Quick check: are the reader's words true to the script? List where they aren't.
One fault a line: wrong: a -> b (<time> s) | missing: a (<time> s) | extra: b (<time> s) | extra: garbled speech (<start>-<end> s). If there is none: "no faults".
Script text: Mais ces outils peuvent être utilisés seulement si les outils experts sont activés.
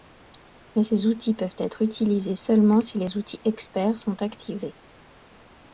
no faults